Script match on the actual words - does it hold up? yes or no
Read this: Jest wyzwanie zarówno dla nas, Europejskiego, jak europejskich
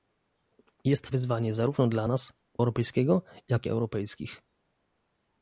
yes